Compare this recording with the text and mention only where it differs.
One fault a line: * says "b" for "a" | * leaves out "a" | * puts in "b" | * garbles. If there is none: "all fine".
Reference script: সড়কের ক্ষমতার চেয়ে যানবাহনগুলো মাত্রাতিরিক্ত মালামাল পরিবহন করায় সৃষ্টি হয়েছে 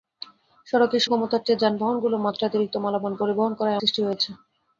all fine